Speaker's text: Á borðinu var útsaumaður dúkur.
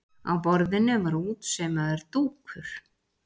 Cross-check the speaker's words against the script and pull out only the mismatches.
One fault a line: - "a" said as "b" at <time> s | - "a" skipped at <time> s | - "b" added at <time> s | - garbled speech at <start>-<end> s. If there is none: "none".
none